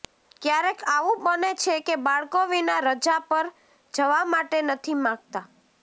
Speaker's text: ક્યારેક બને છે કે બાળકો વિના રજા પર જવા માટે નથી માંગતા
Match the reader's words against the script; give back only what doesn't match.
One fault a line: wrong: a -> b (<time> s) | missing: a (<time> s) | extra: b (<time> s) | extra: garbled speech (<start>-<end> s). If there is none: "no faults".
extra: આવું (0.9 s)